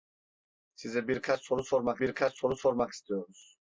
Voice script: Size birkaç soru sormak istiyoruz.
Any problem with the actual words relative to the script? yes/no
yes